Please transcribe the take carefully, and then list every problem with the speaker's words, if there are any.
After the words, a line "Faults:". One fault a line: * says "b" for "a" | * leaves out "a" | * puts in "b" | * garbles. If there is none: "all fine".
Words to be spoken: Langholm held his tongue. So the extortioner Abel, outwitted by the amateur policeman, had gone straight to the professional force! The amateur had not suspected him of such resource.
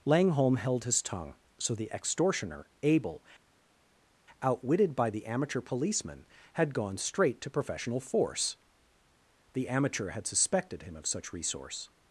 Langholm held his tongue. So the extortioner Abel, outwitted by the amateur policeman, had gone straight to professional force! The amateur had suspected him of such resource.
Faults:
* leaves out "the"
* leaves out "not"